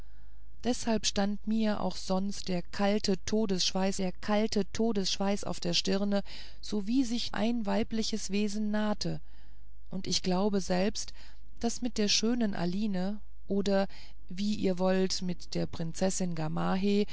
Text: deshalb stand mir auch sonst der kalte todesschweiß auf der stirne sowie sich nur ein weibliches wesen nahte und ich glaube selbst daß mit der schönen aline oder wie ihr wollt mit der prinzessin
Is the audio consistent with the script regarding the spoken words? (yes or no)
no